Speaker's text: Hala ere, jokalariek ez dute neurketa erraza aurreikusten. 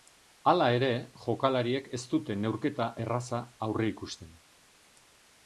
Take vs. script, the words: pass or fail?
pass